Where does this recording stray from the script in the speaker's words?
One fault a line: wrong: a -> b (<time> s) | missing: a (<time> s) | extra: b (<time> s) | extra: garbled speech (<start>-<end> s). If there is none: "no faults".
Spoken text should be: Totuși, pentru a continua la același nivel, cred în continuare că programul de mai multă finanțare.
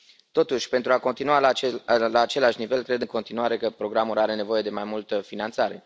extra: are nevoie (4.2 s)